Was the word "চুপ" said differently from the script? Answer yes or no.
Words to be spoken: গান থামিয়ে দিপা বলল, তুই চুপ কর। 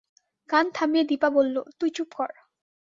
no